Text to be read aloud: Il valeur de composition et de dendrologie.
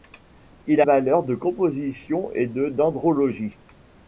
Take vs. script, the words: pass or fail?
pass